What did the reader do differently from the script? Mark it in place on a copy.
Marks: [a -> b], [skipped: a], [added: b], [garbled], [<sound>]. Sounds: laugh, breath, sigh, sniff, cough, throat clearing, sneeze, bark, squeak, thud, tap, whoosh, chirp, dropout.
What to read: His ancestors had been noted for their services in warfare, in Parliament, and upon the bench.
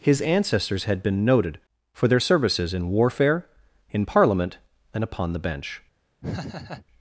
His ancestors had been noted for their services in warfare, in Parliament, and upon the bench. [laugh]